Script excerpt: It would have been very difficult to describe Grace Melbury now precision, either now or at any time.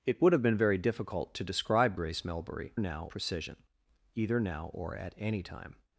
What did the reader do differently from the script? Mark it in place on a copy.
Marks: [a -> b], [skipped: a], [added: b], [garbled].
It would have been very difficult to describe Grace Melbury now precision, either now or at any time.